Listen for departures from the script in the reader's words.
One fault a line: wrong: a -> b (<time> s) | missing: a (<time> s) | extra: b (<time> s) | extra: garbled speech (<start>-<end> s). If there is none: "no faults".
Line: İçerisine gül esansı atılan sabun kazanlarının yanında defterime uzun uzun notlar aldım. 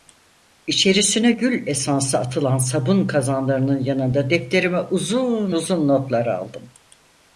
no faults